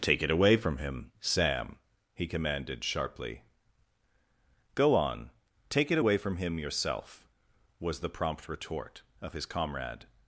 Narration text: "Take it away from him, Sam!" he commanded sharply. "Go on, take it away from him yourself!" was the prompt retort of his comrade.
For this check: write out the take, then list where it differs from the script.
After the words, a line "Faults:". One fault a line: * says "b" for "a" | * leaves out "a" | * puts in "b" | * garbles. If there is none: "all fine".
"Take it away from him, Sam!" he commanded sharply. "Go on, take it away from him yourself!" was the prompt retort of his comrade.
Faults:
all fine